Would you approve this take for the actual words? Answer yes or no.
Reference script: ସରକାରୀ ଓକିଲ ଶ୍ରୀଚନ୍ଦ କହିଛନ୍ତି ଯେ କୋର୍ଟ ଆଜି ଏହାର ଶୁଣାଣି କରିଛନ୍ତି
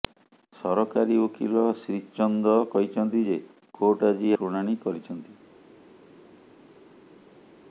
no